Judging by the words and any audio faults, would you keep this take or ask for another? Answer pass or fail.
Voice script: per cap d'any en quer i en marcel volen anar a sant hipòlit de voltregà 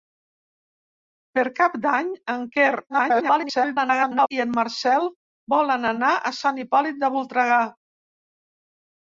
fail